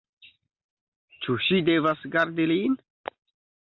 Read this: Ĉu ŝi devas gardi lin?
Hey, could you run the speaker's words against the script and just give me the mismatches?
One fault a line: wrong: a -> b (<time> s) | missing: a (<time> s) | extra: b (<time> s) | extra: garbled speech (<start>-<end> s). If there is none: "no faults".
no faults